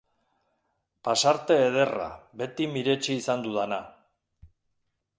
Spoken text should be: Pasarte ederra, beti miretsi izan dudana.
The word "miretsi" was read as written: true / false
true